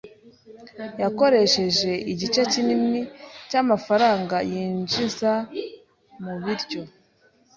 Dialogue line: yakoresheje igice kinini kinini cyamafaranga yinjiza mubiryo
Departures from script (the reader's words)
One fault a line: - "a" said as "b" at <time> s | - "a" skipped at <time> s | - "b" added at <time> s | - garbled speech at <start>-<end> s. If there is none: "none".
- "kinini" skipped at 3.0 s